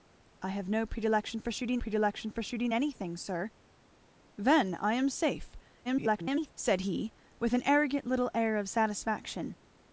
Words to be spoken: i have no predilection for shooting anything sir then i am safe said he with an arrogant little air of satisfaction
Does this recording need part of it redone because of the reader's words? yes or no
yes